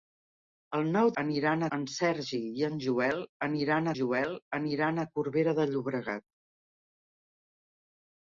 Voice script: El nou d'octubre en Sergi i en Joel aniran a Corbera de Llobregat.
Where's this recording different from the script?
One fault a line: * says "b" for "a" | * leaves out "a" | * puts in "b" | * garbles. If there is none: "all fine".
* says "aniran" for "d'octubre"
* puts in "Joel aniran"